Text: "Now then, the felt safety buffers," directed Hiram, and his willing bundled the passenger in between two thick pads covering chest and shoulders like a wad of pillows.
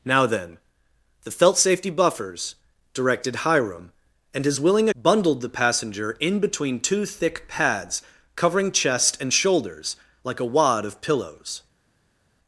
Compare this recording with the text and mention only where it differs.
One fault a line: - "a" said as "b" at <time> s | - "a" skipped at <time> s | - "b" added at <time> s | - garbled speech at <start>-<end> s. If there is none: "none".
none